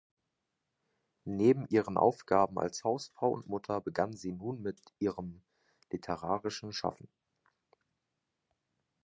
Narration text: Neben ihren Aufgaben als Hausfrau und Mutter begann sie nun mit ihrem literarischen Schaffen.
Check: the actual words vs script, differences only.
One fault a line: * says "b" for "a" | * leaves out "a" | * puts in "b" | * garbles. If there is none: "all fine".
all fine